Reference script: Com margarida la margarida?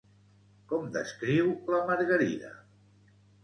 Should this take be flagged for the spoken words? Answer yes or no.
yes